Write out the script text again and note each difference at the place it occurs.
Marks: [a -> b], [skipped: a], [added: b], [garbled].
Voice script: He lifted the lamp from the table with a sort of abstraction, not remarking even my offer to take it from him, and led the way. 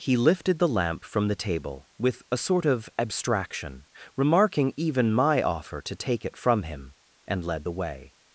He lifted the lamp from the table with a sort of abstraction, [skipped: not] remarking even my offer to take it from him, and led the way.